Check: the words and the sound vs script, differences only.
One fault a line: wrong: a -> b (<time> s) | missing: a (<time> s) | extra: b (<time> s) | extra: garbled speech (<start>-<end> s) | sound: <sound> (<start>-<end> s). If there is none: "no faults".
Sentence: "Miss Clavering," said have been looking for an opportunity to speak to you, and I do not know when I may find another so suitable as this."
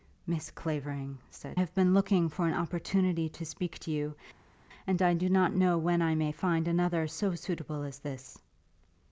no faults